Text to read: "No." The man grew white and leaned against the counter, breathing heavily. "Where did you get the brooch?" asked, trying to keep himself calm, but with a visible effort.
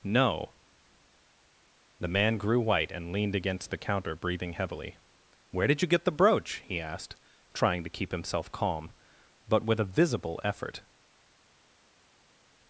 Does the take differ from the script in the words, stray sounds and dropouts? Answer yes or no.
yes